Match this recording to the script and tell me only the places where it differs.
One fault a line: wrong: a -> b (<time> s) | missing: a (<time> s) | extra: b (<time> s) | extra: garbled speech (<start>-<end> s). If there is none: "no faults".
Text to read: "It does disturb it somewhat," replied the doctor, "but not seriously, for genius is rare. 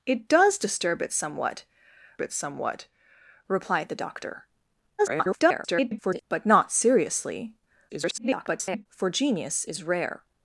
extra: it somewhat (2.2 s)
extra: garbled speech (5.0-6.2 s)
extra: garbled speech (7.9-8.9 s)